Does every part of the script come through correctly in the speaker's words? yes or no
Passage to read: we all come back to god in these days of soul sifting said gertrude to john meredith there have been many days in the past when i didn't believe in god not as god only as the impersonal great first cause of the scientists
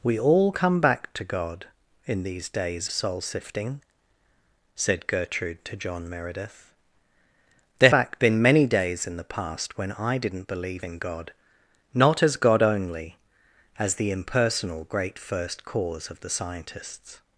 no